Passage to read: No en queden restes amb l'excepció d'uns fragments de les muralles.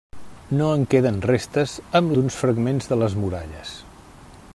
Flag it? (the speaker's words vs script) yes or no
yes